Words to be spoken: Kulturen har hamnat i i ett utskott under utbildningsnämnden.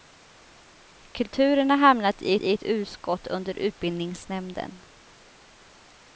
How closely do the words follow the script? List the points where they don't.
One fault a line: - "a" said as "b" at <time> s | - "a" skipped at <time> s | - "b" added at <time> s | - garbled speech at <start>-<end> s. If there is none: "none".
none